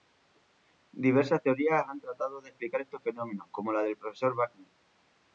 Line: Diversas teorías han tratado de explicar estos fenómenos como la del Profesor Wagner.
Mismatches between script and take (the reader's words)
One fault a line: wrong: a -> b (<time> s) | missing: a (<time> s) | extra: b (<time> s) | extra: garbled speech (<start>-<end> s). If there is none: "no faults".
no faults